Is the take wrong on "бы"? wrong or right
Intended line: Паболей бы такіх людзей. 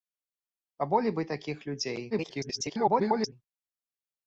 right